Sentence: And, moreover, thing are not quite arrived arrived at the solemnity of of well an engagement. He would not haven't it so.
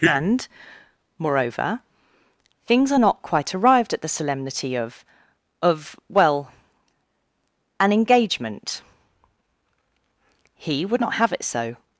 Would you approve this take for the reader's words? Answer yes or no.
no